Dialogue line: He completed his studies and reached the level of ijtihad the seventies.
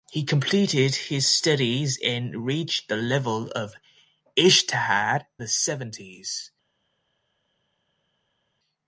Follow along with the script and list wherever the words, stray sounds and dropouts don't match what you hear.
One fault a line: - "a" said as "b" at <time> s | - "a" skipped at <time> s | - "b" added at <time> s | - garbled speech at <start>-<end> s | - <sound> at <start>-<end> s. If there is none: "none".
none